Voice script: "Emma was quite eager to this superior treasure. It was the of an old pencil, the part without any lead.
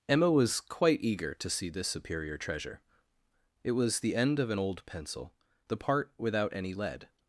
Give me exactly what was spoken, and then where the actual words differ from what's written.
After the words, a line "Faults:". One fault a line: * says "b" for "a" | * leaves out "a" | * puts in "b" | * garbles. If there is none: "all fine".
"Emma was quite eager to see this superior treasure. It was the end of an old pencil, the part without any lead.
Faults:
* puts in "see"
* puts in "end"